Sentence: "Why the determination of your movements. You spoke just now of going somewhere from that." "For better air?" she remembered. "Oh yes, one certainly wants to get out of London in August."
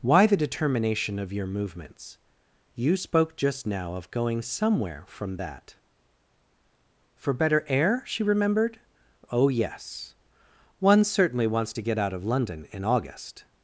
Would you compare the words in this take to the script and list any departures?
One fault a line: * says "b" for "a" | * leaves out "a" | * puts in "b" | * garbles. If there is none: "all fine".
all fine